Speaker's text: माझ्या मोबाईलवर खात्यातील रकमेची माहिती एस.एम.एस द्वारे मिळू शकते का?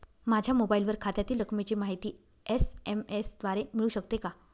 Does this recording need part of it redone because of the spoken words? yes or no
no